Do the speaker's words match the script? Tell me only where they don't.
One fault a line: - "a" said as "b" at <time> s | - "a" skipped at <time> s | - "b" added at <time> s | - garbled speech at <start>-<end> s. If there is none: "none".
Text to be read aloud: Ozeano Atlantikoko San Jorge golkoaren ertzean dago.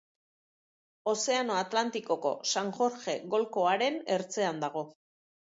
none